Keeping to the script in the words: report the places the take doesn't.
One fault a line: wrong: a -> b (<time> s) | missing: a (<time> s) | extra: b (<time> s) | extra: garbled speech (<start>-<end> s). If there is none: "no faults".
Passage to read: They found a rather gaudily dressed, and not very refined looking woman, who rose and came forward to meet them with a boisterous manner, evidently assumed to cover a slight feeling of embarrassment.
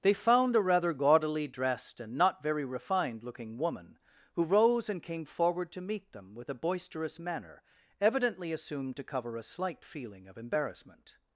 no faults